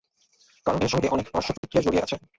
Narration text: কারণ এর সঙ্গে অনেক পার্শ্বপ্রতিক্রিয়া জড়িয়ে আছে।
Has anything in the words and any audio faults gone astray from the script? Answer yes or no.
yes